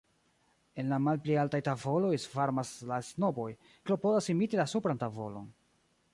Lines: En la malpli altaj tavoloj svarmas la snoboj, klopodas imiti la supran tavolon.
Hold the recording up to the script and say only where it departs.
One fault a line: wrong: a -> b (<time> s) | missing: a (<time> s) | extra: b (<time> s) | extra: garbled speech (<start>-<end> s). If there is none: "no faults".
no faults